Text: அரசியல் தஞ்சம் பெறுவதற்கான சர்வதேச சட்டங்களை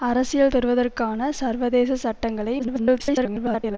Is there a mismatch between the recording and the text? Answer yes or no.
yes